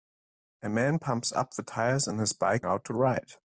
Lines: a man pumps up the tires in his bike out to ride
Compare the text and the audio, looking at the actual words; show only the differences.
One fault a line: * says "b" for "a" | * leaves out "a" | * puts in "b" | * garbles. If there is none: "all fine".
all fine